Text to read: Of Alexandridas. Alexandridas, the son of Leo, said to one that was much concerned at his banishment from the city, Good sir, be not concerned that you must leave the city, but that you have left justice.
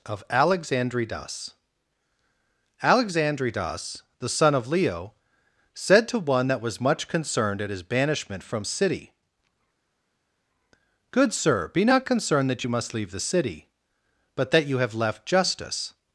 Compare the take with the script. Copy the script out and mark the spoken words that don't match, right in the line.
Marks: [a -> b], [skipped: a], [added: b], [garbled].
Of Alexandridas. Alexandridas, the son of Leo, said to one that was much concerned at his banishment from [skipped: the] city, Good sir, be not concerned that you must leave the city, but that you have left justice.